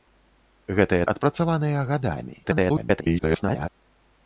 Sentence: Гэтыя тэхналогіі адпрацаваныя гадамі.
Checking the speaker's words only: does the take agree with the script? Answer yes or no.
no